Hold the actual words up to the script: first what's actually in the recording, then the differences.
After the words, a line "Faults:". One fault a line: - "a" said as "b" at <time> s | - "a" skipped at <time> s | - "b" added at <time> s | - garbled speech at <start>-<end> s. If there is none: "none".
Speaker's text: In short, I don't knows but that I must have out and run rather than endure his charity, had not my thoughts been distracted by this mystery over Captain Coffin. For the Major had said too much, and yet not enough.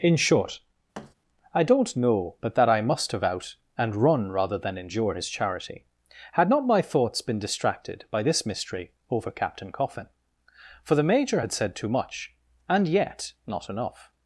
In short, I don't know but that I must have out and run rather than endure his charity, had not my thoughts been distracted by this mystery over Captain Coffin. For the Major had said too much, and yet not enough.
Faults:
- "knows" said as "know" at 1.9 s